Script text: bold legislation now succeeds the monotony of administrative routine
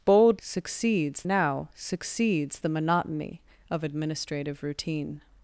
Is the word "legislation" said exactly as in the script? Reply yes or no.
no